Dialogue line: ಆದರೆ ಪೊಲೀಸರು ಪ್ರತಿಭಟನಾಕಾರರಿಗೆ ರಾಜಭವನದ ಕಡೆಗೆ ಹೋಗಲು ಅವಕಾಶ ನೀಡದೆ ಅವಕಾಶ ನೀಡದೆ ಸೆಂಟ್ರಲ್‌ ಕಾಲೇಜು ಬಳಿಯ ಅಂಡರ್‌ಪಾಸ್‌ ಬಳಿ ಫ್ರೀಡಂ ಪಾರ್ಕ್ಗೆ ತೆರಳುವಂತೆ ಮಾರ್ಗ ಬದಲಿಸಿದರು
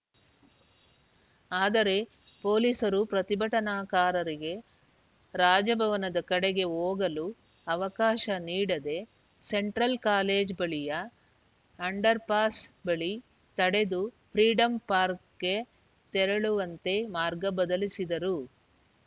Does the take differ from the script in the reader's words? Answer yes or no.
yes